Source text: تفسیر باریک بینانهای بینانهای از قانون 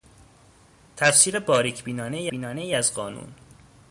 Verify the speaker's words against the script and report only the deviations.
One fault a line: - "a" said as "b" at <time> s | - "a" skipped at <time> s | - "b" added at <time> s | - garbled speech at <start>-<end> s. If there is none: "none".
none